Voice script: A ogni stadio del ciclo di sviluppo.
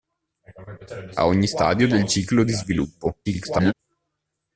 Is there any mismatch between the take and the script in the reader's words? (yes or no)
yes